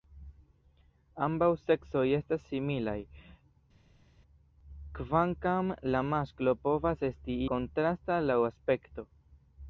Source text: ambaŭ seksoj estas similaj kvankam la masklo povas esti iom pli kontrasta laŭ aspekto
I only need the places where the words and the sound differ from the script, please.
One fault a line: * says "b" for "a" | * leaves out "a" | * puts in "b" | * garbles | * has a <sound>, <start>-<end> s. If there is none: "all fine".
* leaves out "iom pli"